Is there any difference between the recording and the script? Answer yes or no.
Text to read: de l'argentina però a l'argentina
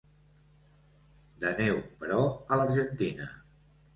yes